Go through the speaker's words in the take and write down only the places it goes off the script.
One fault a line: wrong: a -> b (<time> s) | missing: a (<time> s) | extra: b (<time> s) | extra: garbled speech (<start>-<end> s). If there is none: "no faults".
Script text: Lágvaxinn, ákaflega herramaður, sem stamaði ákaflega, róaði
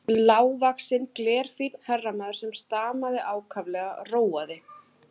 wrong: ákaflega -> glerfínn (1.2 s)